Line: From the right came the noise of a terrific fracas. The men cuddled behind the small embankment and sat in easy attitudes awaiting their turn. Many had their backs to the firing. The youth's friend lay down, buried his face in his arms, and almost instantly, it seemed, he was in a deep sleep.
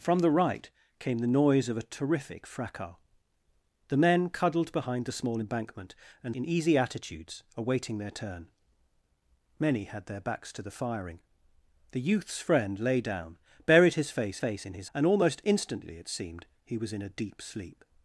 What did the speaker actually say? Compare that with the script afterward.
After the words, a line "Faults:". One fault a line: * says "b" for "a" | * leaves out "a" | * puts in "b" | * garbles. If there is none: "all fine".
From the right came the noise of a terrific fracas. The men cuddled behind the small embankment and in easy attitudes awaiting their turn. Many had their backs to the firing. The youth's friend lay down, buried his face face in his and almost instantly, it seemed, he was in a deep sleep.
Faults:
* leaves out "sat"
* puts in "face"
* leaves out "arms"